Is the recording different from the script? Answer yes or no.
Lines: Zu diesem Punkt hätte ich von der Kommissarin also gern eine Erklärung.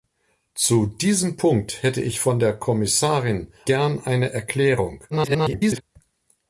yes